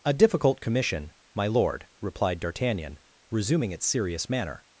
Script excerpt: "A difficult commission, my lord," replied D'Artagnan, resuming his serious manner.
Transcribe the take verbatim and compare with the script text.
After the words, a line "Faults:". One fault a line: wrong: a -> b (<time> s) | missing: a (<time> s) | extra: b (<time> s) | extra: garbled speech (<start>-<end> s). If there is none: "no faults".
"A difficult commission, my lord," replied D'Artagnan, resuming its serious manner.
Faults:
wrong: his -> its (3.7 s)